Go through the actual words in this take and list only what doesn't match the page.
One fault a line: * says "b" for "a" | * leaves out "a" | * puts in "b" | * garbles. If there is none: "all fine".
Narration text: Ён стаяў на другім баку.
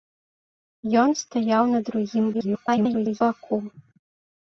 * garbles